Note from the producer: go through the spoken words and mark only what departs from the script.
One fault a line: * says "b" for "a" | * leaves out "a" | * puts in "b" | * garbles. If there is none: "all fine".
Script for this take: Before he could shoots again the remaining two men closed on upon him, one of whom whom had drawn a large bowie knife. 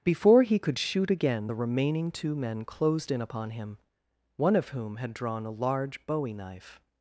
* says "shoot" for "shoots"
* says "in" for "on"
* leaves out "whom"